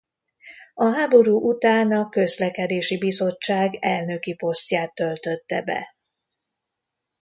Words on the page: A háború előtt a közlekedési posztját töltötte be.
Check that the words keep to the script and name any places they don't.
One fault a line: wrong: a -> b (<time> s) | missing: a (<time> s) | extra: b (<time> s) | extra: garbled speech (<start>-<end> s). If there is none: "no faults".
wrong: előtt -> után (1.5 s)
extra: bizottság elnöki (3.0 s)